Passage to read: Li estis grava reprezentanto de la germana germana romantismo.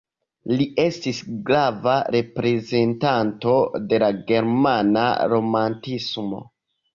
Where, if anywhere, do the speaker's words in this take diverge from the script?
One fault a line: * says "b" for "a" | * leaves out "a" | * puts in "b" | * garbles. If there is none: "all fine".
* leaves out "germana"